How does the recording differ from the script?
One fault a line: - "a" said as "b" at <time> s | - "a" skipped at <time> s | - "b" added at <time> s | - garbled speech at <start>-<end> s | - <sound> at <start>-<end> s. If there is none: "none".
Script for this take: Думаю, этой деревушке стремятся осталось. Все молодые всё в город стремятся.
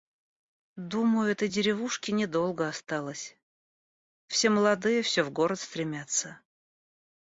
- "стремятся" said as "недолго" at 2.1 s